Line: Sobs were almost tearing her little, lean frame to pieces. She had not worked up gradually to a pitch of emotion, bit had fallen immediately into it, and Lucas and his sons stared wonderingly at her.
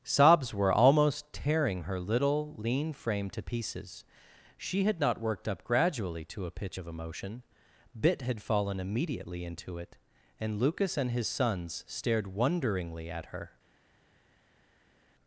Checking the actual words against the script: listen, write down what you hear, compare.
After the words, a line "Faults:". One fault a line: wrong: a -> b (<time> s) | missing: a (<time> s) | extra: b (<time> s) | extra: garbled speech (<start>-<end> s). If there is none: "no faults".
Sobs were almost tearing her little, lean frame to pieces. She had not worked up gradually to a pitch of emotion, bit had fallen immediately into it, and Lucas and his sons stared wonderingly at her.
Faults:
no faults